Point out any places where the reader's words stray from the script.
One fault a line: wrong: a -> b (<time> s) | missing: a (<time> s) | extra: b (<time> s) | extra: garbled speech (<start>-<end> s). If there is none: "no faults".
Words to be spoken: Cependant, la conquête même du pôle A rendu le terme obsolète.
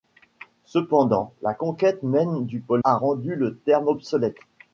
no faults